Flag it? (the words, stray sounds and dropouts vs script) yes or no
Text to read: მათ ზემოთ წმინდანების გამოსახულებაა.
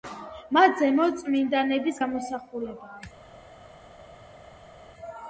no